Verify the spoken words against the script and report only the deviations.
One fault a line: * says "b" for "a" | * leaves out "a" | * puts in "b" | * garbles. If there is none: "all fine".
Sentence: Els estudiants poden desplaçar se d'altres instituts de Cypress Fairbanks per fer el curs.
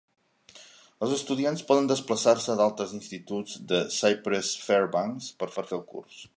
* puts in "per"